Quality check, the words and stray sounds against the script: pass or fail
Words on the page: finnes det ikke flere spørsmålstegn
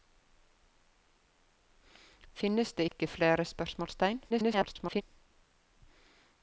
fail